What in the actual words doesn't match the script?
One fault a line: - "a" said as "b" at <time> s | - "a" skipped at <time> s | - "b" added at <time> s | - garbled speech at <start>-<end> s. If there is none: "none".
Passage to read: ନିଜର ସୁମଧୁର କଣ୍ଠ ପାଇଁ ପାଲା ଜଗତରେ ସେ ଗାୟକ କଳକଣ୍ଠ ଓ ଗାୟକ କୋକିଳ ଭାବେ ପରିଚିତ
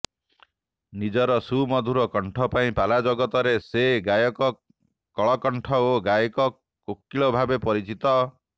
none